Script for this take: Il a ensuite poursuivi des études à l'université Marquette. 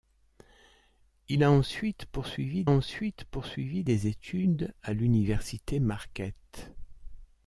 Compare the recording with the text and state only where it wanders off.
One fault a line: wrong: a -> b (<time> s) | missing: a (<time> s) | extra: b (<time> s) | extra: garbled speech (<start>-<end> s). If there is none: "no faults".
extra: ensuite poursuivi (2.7 s)